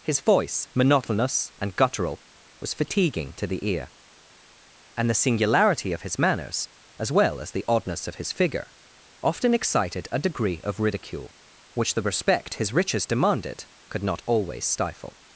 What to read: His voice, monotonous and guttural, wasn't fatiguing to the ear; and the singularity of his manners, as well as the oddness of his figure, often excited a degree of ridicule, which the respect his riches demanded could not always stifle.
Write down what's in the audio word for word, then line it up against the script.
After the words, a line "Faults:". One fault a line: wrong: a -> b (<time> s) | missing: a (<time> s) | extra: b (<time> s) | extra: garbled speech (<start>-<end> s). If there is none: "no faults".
His voice, monotonous and guttural, was fatiguing to the ear; and the singularity of his manners, as well as the oddness of his figure, often excited a degree of ridicule, which the respect his riches demanded could not always stifle.
Faults:
wrong: wasn't -> was (2.6 s)